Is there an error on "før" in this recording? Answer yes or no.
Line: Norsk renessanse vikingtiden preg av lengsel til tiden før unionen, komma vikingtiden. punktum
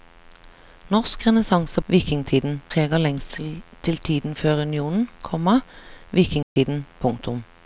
no